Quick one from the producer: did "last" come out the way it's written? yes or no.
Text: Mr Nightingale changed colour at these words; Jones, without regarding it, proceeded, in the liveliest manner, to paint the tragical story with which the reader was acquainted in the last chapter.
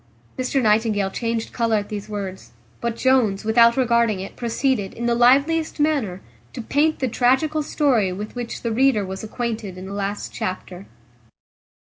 yes